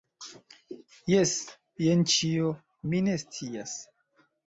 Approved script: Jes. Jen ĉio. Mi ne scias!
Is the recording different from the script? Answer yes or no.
no